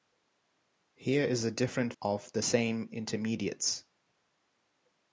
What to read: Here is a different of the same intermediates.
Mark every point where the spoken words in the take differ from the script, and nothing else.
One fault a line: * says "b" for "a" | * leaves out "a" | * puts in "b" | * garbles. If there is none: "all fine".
all fine